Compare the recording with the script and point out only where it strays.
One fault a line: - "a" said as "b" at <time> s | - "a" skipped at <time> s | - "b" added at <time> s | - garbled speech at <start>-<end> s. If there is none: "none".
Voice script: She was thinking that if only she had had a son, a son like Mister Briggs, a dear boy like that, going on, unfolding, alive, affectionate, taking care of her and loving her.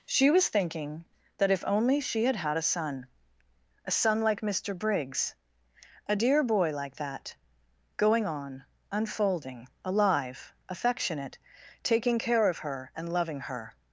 none